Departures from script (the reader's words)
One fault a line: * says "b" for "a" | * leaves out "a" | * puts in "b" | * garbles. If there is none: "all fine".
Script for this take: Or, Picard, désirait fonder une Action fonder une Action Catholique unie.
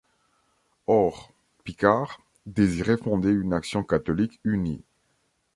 * leaves out "fonder une Action"